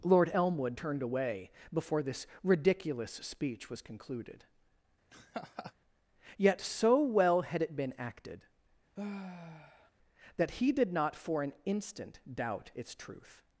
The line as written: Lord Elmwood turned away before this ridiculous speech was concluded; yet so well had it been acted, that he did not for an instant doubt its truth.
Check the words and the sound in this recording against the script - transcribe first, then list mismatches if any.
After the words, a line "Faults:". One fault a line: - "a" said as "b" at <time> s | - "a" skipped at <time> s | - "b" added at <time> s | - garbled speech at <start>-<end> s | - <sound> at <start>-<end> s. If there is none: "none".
Lord Elmwood turned away before this ridiculous speech was concluded; yet so well had it been acted, that he did not for an instant doubt its truth.
Faults:
- laugh at 5.1-5.7 s
- sigh at 9.0-9.9 s